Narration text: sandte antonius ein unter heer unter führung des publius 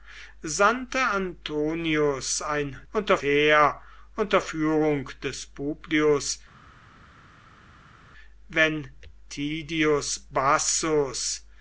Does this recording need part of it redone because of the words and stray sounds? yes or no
no